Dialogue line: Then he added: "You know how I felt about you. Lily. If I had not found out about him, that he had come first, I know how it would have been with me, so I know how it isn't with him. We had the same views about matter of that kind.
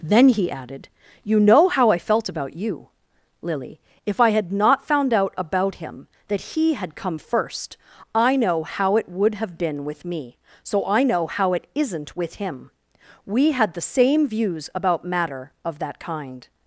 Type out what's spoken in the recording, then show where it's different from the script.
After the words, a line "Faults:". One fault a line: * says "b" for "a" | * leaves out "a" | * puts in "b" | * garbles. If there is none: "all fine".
Then he added: "You know how I felt about you. Lily. If I had not found out about him, that he had come first, I know how it would have been with me, so I know how it isn't with him. We had the same views about matter of that kind.
Faults:
all fine